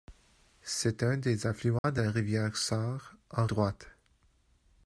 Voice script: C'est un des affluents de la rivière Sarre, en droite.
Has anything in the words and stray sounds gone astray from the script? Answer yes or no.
yes